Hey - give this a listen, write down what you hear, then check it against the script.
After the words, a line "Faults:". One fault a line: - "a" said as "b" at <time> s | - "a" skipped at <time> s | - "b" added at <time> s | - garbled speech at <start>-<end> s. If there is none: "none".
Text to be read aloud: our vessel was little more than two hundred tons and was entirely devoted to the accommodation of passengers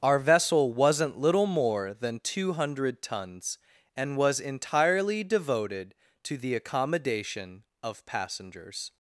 our vessel wasn't little more than two hundred tons and was entirely devoted to the accommodation of passengers
Faults:
- "was" said as "wasn't" at 0.7 s